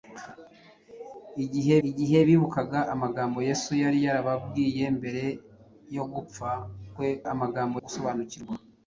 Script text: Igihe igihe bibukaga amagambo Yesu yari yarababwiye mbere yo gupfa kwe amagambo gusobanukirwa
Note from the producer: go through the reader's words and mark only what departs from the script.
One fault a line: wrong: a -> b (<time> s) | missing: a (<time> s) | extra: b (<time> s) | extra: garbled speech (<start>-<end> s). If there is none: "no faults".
no faults